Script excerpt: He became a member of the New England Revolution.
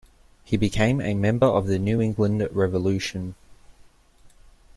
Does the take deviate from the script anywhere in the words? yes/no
no